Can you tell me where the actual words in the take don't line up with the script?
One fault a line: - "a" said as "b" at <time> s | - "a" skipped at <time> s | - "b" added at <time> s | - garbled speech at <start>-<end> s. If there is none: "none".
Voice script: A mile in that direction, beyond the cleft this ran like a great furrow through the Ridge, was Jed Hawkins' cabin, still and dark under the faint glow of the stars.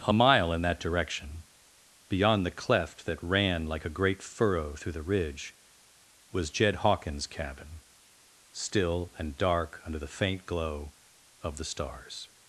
- "this" said as "that" at 3.0 s